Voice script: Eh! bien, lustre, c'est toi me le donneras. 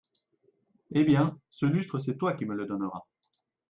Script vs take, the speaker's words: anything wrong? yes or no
yes